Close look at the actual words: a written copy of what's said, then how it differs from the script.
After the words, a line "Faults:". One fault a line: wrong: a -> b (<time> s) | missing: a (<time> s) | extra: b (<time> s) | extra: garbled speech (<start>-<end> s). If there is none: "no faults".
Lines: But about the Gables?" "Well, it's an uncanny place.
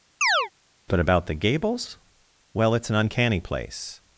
But about the Gables?" "Well, it's an uncanny place.
Faults:
no faults